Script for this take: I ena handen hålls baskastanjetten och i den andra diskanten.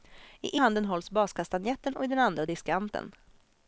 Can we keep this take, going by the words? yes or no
no